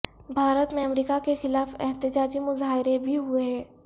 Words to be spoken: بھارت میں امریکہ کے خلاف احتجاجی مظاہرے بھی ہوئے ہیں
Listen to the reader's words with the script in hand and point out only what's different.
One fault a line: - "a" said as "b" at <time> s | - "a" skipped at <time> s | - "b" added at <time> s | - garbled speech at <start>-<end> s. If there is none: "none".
none